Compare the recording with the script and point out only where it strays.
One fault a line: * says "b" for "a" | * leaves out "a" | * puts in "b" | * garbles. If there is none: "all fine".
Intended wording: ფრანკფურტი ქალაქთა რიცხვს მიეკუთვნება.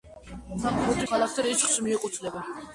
all fine